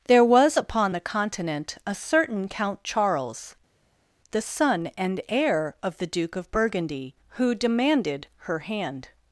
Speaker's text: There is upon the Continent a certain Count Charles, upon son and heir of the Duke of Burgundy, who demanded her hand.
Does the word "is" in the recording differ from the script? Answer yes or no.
yes